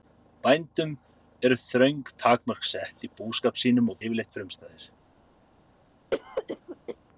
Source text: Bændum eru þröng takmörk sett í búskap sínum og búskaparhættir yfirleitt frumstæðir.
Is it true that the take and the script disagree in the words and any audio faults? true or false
true